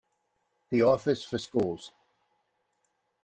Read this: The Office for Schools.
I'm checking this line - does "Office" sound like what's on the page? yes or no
yes